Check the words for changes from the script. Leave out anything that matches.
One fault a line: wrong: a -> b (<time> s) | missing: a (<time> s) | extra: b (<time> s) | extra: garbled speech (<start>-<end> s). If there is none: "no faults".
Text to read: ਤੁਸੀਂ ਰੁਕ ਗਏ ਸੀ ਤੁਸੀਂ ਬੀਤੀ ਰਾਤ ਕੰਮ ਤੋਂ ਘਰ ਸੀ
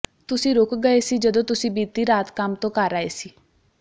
extra: ਜਦੋਂ (1.2 s)
extra: ਆਏ (2.9 s)